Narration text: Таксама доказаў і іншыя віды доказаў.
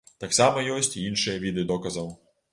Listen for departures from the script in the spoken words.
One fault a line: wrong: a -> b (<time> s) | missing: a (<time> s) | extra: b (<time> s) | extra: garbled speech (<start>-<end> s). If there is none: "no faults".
wrong: доказаў -> ёсць (0.8 s)